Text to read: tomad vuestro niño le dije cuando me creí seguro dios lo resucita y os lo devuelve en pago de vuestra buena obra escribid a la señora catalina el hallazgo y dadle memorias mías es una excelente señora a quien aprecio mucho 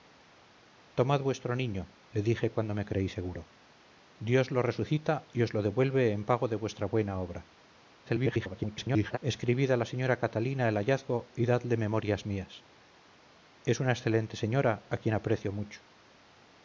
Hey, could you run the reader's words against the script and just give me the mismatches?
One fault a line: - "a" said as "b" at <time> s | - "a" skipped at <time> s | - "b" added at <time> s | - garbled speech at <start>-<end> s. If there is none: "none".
- garbled speech at 8.0-9.2 s